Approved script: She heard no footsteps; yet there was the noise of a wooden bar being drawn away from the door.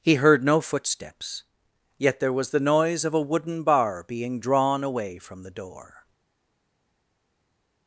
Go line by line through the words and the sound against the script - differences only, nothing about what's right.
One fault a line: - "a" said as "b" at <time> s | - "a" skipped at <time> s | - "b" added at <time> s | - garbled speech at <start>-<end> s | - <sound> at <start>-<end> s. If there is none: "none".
- "She" said as "He" at 0.0 s